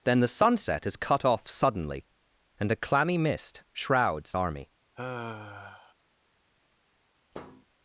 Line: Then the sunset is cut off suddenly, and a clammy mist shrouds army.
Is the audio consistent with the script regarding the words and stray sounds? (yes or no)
no